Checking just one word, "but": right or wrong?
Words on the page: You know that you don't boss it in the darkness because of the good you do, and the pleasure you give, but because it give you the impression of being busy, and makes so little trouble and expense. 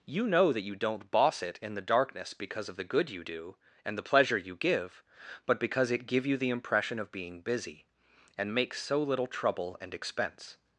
right